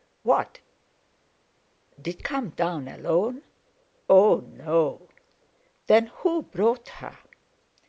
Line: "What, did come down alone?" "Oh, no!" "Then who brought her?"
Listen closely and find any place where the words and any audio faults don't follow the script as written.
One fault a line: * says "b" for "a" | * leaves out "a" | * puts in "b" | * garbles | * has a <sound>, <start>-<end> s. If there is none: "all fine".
all fine